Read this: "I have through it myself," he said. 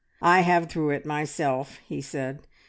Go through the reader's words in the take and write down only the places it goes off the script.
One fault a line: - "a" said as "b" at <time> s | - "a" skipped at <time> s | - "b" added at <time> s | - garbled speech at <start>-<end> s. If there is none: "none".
none